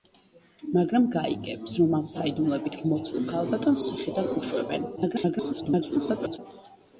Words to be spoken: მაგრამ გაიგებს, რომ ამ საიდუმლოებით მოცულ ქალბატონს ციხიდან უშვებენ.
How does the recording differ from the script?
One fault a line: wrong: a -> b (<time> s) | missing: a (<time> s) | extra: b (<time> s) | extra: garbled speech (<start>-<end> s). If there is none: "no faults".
extra: garbled speech (5.0-6.4 s)